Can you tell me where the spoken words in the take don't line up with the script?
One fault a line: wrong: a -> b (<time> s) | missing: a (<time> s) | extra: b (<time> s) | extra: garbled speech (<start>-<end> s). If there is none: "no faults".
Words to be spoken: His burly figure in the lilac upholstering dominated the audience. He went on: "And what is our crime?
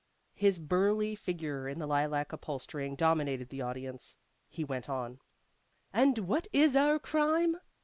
no faults